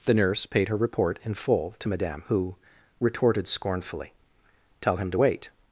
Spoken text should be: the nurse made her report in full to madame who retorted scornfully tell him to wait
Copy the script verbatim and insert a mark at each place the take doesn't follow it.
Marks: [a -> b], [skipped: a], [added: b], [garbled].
the nurse [made -> paid] her report in full to madame who retorted scornfully tell him to wait